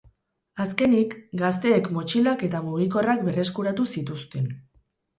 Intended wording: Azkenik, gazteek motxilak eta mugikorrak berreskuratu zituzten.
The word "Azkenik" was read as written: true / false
true